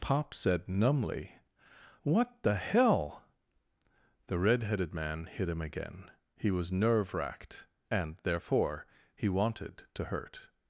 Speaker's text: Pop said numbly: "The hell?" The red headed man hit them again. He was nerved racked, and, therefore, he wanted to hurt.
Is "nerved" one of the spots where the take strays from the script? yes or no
yes